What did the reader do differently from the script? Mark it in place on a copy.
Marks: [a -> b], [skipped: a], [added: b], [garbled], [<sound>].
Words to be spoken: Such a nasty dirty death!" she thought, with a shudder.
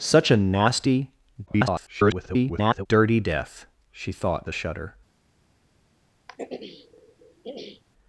Such a nasty [garbled] dirty death!" she thought, [skipped: with] a shudder. [throat clearing]